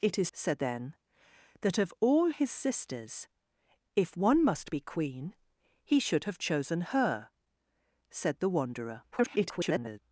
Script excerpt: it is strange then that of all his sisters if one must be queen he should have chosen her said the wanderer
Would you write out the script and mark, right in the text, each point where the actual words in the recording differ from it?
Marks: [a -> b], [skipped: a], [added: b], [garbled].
it is [strange -> said] then that of all his sisters if one must be queen he should have chosen her said the wanderer [garbled]